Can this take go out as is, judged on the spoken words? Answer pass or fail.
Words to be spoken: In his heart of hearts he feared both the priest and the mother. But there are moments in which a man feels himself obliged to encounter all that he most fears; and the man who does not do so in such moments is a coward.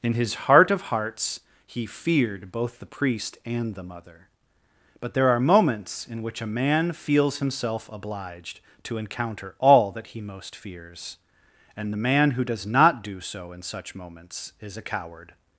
pass